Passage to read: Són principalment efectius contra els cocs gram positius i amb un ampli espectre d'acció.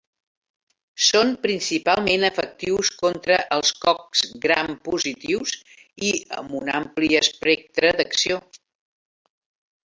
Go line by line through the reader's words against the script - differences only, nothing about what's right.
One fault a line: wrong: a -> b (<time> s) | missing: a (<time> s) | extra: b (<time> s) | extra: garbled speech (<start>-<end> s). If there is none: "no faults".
no faults